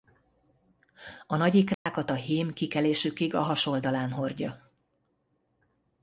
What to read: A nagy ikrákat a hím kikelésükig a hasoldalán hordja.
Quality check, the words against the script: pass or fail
pass